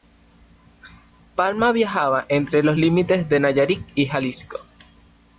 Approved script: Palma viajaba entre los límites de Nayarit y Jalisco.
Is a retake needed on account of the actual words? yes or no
no